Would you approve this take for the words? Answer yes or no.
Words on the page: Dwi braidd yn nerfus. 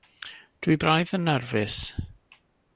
yes